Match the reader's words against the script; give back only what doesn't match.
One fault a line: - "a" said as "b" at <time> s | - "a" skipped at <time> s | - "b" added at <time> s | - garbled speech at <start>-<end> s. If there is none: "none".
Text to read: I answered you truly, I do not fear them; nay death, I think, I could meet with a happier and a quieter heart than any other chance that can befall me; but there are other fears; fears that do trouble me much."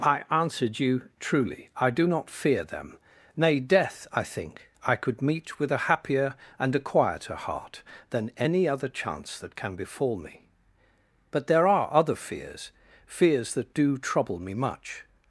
none